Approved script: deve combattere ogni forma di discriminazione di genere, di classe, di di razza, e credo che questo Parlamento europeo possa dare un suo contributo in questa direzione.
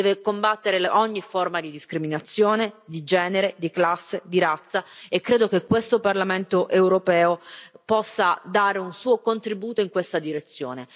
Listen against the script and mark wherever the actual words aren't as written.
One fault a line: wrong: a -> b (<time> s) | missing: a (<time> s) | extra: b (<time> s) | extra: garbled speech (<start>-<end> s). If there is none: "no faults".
missing: di (4.4 s)